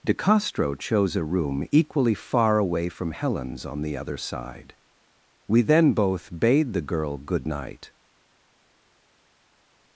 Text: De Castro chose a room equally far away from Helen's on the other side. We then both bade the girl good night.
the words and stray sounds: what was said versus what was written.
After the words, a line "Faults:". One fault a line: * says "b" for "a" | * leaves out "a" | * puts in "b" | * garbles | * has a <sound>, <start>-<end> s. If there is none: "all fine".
De Castro chose a room equally far away from Helen's on the other side. We then both bade the girl good night.
Faults:
all fine